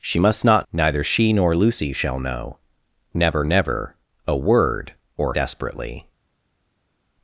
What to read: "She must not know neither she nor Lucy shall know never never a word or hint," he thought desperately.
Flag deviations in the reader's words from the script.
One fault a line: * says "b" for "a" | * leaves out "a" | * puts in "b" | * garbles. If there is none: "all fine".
* leaves out "know"
* leaves out "hint he thought"